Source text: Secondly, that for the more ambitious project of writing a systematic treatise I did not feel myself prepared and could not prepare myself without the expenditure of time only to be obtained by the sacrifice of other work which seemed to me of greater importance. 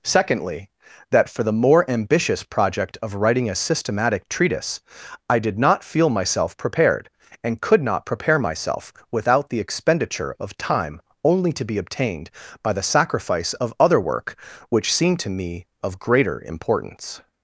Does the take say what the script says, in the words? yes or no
yes